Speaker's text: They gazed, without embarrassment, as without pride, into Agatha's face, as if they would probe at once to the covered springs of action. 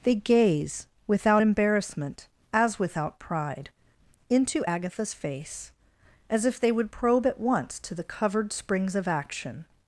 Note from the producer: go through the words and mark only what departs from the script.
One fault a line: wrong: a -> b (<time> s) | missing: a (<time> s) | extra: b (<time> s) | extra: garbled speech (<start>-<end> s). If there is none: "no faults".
wrong: gazed -> gaze (0.1 s)